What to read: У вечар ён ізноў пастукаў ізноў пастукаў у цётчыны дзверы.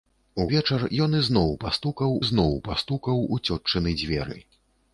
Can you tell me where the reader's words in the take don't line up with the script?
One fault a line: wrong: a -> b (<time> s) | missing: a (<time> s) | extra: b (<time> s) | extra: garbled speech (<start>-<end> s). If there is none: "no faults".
no faults